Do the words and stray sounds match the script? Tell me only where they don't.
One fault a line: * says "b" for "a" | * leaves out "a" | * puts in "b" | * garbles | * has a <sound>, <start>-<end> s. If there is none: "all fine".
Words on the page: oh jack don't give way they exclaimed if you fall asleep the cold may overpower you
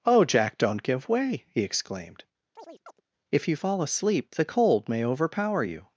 * says "he" for "they"
* has a chirp, 2.6-3.0 s